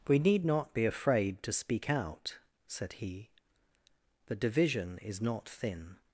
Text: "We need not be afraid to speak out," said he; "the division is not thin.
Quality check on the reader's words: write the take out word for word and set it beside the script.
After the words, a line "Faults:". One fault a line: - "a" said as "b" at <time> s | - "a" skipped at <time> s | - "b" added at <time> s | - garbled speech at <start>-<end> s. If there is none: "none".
"We need not be afraid to speak out," said he; "the division is not thin.
Faults:
none